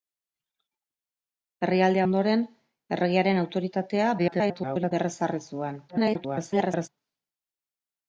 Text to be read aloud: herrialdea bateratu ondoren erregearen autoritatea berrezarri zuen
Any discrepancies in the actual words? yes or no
yes